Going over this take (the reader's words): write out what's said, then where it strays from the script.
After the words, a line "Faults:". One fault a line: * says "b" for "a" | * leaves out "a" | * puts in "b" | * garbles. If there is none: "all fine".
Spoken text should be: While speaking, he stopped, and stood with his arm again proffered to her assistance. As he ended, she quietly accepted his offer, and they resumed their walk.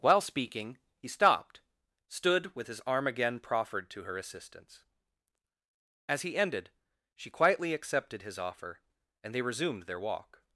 While speaking, he stopped, stood with his arm again proffered to her assistance. As he ended, she quietly accepted his offer, and they resumed their walk.
Faults:
* leaves out "and"